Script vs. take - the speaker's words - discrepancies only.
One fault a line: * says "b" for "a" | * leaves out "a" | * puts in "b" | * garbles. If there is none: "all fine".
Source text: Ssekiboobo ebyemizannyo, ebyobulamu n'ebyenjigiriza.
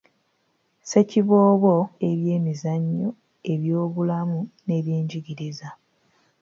all fine